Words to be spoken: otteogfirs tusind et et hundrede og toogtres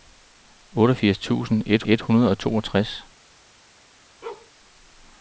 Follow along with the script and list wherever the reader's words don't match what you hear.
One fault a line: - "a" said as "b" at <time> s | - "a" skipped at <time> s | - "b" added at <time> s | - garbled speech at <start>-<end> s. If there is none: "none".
none